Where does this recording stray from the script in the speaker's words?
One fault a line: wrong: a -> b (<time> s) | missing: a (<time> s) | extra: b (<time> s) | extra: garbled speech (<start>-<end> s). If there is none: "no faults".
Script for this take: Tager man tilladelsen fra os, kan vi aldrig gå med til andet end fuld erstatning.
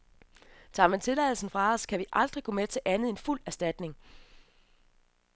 no faults